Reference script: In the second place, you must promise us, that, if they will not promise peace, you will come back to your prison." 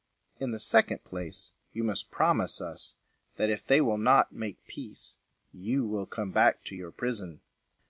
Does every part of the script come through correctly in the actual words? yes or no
no